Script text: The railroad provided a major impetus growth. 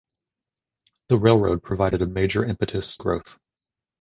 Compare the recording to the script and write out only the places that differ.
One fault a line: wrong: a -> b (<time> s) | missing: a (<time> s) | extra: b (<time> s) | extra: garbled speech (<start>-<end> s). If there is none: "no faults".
no faults